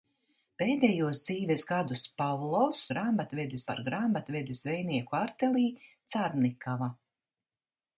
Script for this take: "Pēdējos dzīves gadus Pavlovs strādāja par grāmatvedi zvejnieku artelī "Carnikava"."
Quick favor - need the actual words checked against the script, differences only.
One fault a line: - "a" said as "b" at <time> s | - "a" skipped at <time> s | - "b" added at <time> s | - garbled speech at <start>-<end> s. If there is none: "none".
- "strādāja" said as "grāmatvedi" at 2.9 s